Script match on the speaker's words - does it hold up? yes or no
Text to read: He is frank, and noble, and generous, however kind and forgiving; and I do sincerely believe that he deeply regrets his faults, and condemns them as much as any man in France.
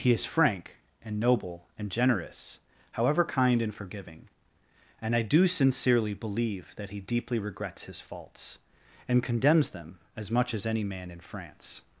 yes